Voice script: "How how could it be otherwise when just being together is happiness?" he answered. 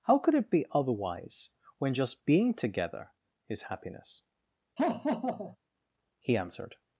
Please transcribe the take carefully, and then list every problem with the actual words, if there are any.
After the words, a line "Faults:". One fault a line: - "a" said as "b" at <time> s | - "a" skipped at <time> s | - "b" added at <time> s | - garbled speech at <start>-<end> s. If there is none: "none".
"How could it be otherwise when just being together is happiness?" he answered.
Faults:
- "how" skipped at 0.2 s